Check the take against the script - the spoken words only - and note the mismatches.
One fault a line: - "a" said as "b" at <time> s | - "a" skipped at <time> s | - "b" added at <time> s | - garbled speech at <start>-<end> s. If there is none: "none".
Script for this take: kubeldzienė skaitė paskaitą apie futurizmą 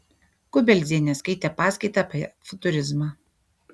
none